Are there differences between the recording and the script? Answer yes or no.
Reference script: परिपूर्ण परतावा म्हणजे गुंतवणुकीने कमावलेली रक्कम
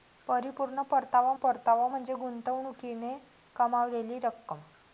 yes